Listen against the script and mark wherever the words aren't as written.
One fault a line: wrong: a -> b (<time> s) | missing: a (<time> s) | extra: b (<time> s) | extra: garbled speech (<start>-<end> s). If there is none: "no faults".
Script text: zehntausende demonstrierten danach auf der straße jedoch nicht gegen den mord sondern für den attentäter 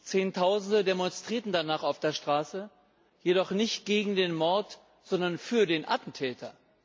no faults